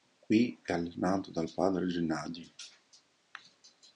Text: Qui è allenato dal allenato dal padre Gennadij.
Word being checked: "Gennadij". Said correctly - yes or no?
yes